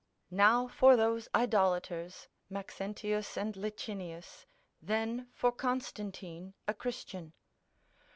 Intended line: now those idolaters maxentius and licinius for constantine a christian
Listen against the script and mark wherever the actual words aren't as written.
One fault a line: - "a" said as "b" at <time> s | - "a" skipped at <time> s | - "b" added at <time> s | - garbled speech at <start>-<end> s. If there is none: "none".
- "for" added at 0.7 s
- "then" added at 4.8 s